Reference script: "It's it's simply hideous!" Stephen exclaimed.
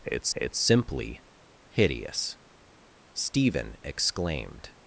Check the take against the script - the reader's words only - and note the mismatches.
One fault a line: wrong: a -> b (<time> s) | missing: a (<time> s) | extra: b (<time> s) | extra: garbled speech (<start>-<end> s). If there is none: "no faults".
no faults